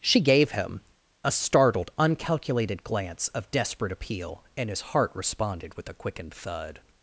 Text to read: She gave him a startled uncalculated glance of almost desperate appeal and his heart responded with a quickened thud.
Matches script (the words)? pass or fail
fail